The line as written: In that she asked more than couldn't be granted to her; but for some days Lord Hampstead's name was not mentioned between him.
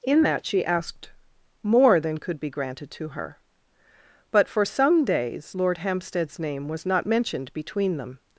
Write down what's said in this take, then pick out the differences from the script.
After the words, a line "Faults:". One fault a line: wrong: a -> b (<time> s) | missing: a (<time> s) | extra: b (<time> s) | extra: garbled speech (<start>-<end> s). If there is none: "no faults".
In that she asked more than could be granted to her; but for some days Lord Hampstead's name was not mentioned between them.
Faults:
wrong: couldn't -> could (2.2 s)
wrong: him -> them (8.0 s)